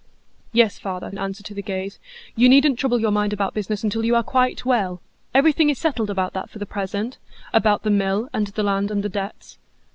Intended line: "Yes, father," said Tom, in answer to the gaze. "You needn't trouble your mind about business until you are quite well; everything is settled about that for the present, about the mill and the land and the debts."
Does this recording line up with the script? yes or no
no